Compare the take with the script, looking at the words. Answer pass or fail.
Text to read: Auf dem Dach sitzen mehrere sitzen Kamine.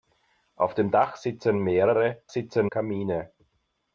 pass